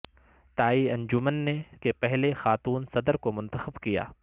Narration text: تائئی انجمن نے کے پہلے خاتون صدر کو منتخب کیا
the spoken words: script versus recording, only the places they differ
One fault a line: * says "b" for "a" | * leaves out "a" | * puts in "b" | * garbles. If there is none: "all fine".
all fine